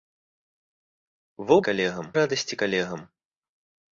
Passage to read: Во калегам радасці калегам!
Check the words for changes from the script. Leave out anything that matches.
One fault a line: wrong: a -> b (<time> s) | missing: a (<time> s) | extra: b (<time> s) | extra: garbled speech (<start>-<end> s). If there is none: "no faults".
no faults